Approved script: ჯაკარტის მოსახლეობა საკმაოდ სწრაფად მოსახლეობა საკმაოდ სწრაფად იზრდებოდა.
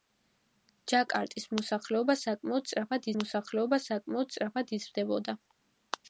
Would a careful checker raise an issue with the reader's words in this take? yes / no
no